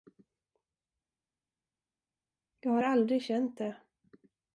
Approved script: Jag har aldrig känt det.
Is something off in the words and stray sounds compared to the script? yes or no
no